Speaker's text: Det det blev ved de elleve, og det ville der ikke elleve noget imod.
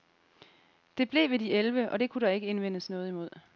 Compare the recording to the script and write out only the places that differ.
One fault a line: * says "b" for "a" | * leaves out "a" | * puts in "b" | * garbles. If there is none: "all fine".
* leaves out "det"
* says "kunne" for "ville"
* says "indvendes" for "elleve"